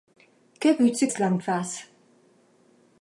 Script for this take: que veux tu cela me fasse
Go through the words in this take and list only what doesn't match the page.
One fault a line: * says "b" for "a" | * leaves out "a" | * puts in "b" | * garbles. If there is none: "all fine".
all fine